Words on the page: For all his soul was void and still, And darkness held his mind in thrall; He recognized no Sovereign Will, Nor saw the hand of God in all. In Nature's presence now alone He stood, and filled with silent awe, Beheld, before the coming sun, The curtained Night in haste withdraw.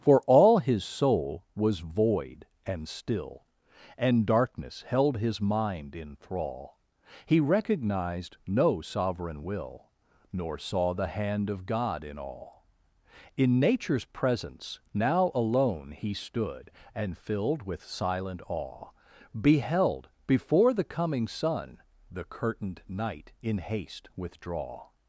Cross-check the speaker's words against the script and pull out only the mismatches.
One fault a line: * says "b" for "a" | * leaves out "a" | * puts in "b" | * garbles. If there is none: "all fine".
all fine